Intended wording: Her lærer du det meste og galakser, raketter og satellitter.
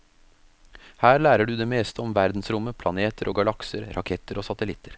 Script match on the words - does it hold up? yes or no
no